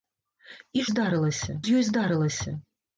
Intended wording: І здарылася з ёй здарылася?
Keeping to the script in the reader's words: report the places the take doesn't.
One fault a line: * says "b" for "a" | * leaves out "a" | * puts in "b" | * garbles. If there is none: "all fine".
all fine